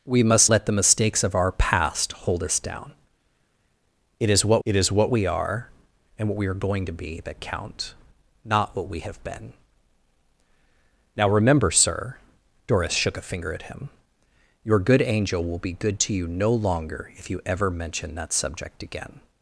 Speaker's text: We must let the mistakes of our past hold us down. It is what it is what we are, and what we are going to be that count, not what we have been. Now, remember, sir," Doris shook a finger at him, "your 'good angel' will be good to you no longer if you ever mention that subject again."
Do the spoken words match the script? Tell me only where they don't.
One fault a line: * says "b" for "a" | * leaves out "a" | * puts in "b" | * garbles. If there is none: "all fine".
all fine